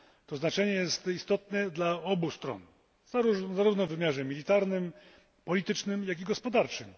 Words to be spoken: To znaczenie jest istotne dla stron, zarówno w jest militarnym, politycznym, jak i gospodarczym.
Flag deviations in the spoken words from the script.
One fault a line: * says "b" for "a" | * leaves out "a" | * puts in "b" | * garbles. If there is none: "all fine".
* puts in "obu"
* says "wymiarze" for "jest"